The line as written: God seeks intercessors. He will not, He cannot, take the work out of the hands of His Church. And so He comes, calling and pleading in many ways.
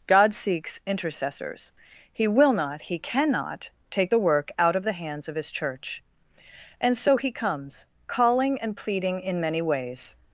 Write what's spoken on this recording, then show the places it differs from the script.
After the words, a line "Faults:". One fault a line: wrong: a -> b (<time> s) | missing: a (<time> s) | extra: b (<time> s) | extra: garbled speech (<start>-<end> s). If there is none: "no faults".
God seeks intercessors. He will not, He cannot, take the work out of the hands of His Church. And so He comes, calling and pleading in many ways.
Faults:
no faults